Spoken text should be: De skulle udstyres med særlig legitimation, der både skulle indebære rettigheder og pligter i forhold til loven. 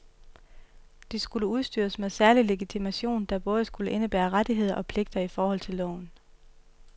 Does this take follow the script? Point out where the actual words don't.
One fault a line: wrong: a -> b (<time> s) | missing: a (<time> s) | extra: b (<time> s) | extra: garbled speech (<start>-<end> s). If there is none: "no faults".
no faults